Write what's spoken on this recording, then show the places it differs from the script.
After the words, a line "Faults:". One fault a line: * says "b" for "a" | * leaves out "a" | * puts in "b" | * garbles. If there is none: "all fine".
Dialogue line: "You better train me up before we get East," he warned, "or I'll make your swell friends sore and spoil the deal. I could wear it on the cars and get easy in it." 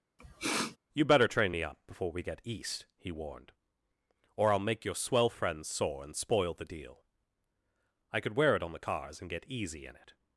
"You better train me up before we get East," he warned, "or I'll make your swell friends sore and spoil the deal. I could wear it on the cars and get easy in it."
Faults:
all fine